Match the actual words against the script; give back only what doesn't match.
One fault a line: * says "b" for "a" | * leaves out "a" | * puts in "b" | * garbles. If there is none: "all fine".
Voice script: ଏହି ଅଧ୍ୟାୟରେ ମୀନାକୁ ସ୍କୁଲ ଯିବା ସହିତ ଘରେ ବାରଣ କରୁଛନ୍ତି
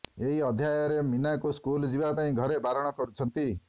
* says "ପାଇଁ" for "ସହିତ"